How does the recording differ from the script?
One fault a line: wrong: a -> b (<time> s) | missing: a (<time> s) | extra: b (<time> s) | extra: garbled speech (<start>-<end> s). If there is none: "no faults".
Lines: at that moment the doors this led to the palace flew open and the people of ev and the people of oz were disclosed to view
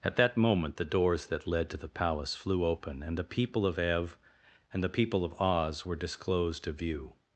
wrong: this -> that (1.3 s)